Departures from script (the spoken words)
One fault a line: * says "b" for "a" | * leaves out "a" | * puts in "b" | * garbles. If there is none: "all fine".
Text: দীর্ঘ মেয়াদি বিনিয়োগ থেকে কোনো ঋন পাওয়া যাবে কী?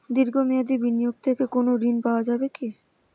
all fine